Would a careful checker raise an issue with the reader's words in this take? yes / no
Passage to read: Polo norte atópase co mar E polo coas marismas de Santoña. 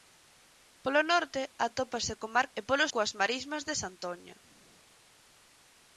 no